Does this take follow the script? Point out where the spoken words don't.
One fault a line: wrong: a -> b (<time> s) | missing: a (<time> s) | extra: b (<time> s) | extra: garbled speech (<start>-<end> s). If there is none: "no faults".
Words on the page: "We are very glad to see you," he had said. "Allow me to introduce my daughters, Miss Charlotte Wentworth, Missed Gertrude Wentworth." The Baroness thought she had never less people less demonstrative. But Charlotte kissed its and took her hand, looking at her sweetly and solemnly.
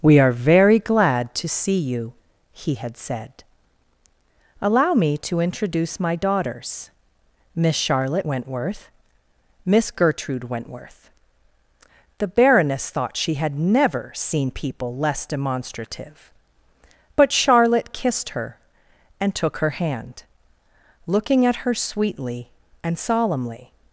wrong: Missed -> Miss (9.6 s)
wrong: less -> seen (14.1 s)
wrong: its -> her (18.3 s)